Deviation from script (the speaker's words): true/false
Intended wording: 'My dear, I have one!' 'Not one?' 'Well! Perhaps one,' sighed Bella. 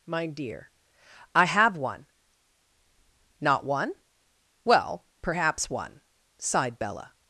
false